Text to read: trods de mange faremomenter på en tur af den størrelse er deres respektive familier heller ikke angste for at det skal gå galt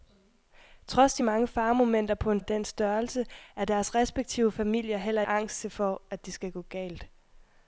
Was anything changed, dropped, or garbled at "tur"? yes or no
yes